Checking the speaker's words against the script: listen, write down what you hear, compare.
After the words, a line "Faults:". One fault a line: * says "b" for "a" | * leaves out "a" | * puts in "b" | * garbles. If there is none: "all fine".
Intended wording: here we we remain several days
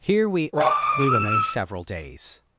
here we we remain several days
Faults:
all fine